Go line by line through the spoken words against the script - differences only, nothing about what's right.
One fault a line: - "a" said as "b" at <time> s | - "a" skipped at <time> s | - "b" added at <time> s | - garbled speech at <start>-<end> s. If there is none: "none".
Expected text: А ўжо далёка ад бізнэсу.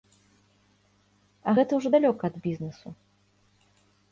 - "гэта" added at 1.6 s